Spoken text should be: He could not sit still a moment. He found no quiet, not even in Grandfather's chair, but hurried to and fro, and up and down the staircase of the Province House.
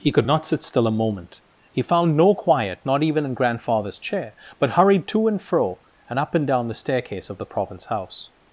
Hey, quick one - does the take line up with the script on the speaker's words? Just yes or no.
yes